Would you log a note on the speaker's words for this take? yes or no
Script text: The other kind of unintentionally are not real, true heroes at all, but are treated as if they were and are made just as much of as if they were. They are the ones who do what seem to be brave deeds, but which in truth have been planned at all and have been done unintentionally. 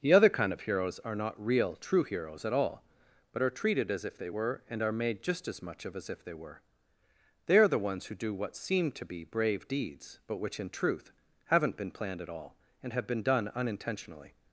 yes